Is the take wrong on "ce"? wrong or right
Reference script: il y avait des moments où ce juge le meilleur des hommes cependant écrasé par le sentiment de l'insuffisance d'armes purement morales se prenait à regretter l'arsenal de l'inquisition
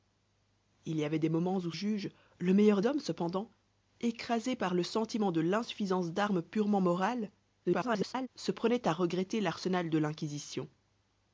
wrong